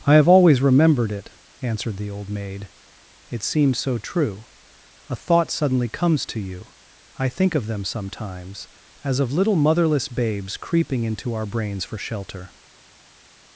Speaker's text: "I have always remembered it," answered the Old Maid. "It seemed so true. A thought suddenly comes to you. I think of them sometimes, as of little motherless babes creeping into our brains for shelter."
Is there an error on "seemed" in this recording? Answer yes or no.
yes